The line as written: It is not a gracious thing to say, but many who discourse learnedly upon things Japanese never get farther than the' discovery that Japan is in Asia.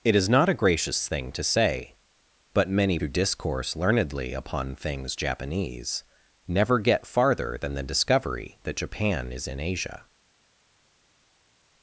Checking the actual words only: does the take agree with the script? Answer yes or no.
yes